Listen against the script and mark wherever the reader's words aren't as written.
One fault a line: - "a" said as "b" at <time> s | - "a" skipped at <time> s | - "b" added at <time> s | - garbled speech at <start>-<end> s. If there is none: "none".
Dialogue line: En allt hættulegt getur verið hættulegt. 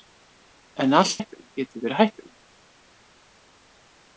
none